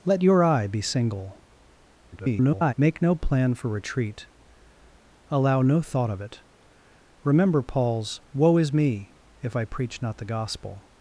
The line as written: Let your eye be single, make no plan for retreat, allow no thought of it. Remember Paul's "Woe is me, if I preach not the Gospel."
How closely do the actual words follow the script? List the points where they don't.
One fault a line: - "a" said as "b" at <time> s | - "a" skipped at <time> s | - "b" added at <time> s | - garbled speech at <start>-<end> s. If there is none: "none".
- garbled speech at 2.1-2.7 s